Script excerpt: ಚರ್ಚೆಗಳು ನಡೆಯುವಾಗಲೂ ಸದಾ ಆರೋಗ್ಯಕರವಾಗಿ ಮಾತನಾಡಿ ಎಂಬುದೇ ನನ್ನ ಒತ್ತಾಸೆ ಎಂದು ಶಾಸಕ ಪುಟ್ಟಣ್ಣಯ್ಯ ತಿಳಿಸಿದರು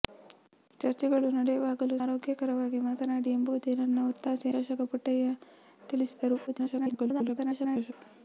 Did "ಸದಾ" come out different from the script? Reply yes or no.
yes